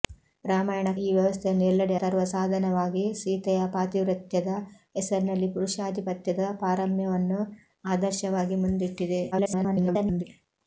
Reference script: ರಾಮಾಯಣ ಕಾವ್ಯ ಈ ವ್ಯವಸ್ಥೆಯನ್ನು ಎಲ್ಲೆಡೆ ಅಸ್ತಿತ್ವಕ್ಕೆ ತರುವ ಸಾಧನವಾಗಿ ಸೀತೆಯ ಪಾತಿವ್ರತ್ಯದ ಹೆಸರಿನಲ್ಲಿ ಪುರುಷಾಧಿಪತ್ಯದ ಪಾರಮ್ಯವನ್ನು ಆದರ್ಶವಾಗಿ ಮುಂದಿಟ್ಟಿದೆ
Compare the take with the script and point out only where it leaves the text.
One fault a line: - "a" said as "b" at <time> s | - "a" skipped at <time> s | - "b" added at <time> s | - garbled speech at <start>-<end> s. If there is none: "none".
- "ಕಾವ್ಯ" skipped at 0.9 s
- "ಅಸ್ತಿತ್ವಕ್ಕೆ" skipped at 1.9 s
- garbled speech at 9.3-10.2 s